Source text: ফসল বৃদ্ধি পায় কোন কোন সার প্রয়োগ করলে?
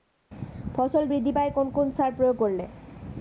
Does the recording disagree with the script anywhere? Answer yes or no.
no